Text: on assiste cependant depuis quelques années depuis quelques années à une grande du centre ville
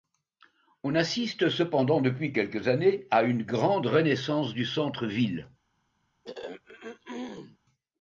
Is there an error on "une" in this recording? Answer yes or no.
no